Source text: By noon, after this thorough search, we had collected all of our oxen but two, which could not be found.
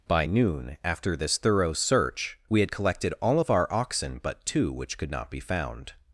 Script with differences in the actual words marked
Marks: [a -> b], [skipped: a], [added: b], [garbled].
By noon, after this thorough search, we had collected all of our oxen but two, which could not be found.